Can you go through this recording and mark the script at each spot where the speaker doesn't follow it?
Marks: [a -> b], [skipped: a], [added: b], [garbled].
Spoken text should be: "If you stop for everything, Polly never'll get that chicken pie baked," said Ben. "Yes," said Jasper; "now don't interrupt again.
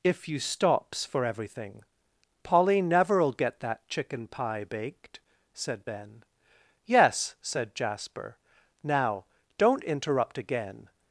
"If you [stop -> stops] for everything, Polly never'll get that chicken pie baked," said Ben. "Yes," said Jasper; "now don't interrupt again.